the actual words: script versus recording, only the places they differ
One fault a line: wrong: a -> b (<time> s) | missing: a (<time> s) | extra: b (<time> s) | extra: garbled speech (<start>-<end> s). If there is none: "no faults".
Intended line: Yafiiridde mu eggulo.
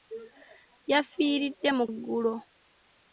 no faults